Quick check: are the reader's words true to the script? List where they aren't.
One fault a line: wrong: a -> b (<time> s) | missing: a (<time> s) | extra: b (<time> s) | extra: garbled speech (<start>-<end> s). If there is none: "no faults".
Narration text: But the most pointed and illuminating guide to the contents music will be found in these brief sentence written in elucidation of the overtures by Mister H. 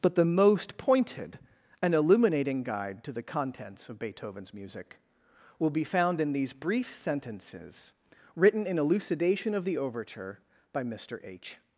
extra: of Beethoven's (3.9 s)
wrong: sentence -> sentences (6.9 s)
wrong: overtures -> overture (9.8 s)